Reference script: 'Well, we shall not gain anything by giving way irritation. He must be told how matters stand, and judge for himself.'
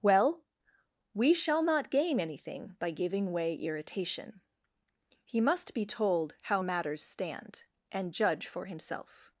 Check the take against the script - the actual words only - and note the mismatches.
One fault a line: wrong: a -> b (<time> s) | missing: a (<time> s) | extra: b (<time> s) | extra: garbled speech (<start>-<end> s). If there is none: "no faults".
no faults